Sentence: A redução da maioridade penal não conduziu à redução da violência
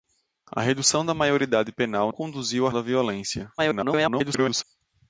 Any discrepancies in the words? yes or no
yes